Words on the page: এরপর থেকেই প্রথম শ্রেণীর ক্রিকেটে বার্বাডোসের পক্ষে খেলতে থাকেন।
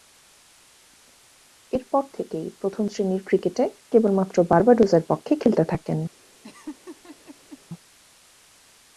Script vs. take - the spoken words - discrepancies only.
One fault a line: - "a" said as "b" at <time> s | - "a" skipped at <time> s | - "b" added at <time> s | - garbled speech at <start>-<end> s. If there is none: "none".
- "কেবলমাত্র" added at 3.9 s